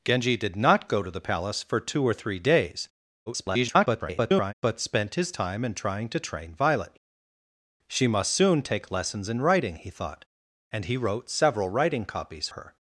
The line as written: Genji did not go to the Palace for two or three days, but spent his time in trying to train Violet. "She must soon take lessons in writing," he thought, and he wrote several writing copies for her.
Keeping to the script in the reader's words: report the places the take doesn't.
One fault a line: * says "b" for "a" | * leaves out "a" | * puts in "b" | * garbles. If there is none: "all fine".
* garbles
* leaves out "for"